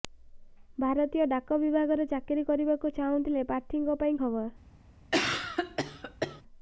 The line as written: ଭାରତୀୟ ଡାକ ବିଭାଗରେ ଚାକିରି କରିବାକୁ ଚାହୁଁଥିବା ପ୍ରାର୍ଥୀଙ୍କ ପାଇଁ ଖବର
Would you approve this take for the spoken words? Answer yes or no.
yes